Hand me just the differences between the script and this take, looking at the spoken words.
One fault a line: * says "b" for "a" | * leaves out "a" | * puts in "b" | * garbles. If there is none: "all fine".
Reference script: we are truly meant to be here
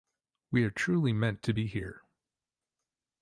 all fine